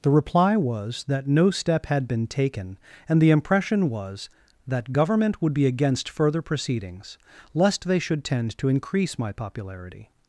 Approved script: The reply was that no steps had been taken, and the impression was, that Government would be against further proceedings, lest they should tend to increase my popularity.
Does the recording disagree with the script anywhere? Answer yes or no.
yes